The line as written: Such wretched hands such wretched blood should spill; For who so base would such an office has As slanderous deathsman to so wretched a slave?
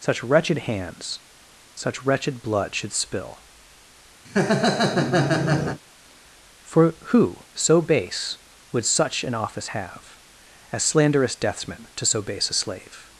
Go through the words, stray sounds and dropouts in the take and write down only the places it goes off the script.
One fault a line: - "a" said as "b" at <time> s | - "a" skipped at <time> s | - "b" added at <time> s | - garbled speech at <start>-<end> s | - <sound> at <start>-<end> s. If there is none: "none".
- laugh at 4.2-5.8 s
- "has" said as "have" at 9.7 s
- "wretched" said as "base" at 12.2 s